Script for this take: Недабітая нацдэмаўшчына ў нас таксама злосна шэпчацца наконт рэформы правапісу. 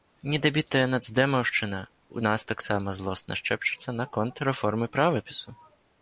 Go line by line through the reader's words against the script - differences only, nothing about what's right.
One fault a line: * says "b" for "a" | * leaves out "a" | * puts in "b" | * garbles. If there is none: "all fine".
all fine